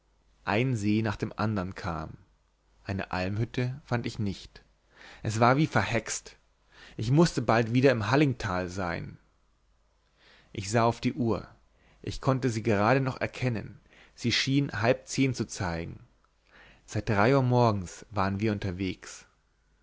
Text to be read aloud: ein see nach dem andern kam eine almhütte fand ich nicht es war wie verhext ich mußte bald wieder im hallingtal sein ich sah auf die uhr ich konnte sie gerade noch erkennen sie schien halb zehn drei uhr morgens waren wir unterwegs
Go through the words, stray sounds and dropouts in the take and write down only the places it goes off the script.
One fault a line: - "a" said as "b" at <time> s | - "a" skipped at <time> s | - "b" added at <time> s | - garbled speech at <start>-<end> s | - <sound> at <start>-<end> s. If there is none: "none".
- "zu zeigen seit" added at 15.3 s